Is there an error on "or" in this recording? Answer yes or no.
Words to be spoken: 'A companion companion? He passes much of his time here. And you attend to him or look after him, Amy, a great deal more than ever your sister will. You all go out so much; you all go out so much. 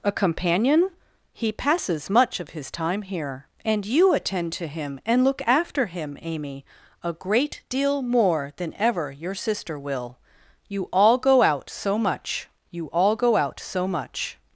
yes